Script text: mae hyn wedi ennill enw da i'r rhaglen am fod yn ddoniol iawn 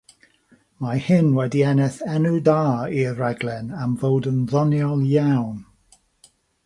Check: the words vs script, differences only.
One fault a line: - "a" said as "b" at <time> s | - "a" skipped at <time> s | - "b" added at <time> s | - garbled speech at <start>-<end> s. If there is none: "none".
none